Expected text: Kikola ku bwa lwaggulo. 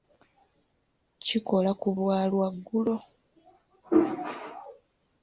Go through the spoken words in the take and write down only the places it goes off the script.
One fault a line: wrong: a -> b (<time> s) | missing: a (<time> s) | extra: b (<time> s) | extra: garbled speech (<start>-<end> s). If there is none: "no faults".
no faults